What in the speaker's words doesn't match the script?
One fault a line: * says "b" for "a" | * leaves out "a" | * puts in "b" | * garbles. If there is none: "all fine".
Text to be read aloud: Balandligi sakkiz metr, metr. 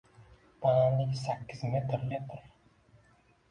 all fine